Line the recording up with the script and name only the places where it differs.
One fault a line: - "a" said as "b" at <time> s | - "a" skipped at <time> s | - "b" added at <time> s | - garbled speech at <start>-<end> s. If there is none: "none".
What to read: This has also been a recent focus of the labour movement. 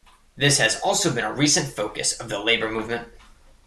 none